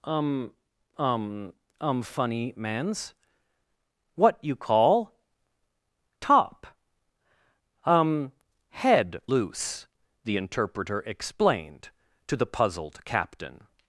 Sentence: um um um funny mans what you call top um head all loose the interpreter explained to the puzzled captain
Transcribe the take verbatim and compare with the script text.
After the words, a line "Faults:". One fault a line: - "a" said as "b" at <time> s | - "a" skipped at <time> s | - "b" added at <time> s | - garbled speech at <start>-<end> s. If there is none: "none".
um um um funny mans what you call top um head loose the interpreter explained to the puzzled captain
Faults:
- "all" skipped at 9.2 s